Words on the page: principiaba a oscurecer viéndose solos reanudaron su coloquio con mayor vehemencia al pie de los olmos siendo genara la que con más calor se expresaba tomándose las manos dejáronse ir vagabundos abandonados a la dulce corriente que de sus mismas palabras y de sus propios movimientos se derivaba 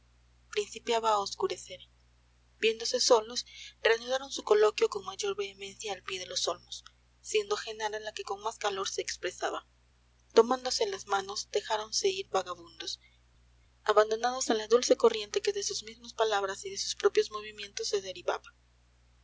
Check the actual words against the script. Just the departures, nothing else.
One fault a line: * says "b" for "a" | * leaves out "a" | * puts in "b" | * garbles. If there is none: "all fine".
all fine